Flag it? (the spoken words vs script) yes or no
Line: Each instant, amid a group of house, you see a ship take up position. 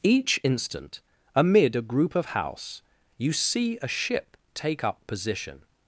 no